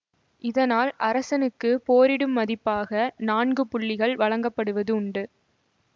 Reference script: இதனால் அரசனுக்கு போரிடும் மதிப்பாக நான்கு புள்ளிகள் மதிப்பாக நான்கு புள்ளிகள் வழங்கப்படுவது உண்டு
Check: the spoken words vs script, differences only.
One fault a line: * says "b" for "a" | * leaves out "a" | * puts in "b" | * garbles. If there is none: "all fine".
* leaves out "மதிப்பாக நான்கு புள்ளிகள்"